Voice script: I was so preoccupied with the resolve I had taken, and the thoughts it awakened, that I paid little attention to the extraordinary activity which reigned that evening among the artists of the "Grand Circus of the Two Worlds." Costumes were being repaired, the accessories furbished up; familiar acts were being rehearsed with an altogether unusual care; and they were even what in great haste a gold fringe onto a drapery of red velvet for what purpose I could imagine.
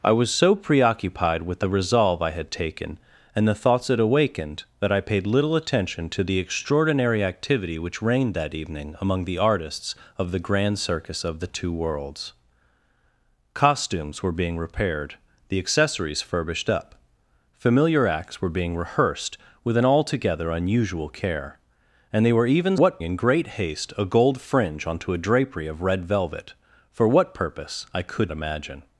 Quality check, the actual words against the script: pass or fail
pass